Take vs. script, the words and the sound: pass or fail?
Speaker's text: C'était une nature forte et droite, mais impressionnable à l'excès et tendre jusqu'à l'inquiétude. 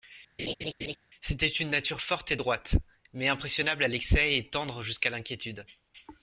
fail